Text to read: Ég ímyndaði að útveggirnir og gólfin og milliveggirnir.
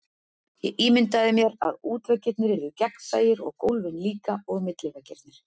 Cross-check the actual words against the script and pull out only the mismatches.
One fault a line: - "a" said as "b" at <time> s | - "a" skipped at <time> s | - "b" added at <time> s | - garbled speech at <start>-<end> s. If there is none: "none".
- "mér" added at 1.4 s
- "yrðu gegnsæir" added at 2.5 s
- "líka" added at 4.1 s